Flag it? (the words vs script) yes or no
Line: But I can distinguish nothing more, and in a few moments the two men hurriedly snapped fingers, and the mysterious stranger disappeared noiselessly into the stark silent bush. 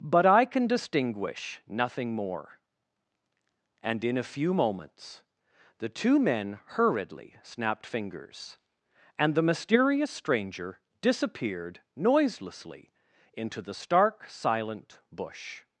no